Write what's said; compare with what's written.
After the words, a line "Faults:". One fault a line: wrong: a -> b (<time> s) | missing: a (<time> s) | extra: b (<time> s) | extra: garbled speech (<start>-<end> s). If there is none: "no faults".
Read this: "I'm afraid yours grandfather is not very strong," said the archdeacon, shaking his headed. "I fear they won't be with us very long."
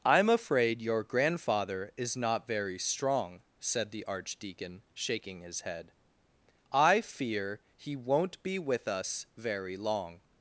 "I'm afraid your grandfather is not very strong," said the archdeacon, shaking his head. "I fear he won't be with us very long."
Faults:
wrong: yours -> your (0.8 s)
wrong: headed -> head (5.6 s)
wrong: they -> he (7.7 s)